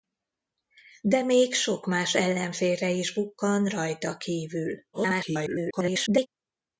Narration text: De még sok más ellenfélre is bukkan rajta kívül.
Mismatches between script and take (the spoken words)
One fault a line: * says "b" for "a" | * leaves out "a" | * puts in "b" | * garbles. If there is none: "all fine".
* garbles